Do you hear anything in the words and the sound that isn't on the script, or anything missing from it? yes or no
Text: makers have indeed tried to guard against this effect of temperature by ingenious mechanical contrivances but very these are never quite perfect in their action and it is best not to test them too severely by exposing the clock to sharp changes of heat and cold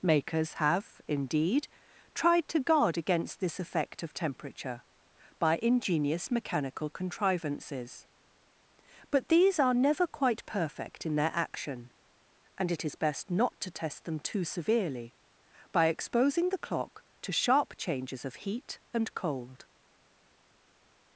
yes